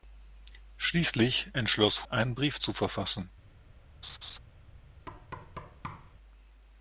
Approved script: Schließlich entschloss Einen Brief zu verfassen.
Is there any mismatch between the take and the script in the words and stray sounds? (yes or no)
yes